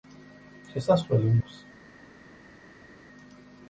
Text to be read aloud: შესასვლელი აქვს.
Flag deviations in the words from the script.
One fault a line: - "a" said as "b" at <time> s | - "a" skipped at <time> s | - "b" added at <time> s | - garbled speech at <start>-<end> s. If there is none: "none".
none